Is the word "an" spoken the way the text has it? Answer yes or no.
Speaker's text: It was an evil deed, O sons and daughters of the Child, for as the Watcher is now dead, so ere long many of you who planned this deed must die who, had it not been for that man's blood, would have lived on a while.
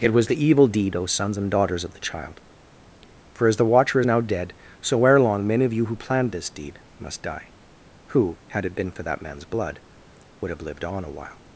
no